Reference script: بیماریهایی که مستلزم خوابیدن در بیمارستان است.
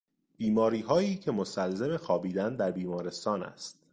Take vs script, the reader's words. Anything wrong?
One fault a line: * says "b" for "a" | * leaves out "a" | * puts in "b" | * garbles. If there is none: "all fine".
all fine